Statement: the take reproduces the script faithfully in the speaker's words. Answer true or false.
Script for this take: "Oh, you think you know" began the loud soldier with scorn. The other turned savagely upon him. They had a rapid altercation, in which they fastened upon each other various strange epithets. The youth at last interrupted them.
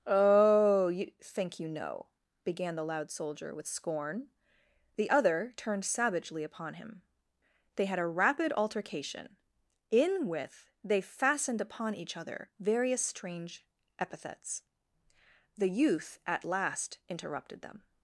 false